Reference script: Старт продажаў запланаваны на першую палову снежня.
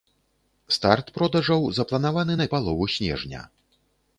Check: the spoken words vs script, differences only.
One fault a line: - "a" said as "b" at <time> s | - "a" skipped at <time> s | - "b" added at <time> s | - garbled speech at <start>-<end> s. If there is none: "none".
- "першую" skipped at 2.5 s